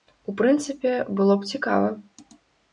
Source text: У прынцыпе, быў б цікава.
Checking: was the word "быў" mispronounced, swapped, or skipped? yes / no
yes